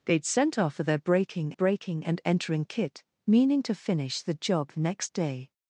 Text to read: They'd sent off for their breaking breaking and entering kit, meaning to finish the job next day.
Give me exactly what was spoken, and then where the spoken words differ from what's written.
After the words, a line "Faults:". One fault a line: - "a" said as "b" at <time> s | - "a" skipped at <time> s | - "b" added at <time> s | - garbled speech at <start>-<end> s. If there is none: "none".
They'd sent off for their breaking breaking and entering kit, meaning to finish the job next day.
Faults:
none